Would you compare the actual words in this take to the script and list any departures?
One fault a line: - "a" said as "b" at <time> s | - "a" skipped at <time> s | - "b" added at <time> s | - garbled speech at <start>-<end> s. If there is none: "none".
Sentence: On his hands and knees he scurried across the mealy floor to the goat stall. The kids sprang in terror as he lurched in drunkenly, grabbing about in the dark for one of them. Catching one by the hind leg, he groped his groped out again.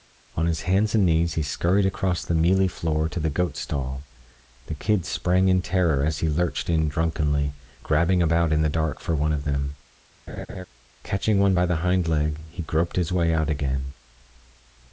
- "groped" said as "way" at 13.1 s